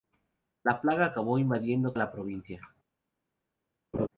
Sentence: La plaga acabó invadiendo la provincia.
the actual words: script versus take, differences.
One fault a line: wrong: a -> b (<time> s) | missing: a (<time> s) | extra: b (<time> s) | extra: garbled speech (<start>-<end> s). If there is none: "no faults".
no faults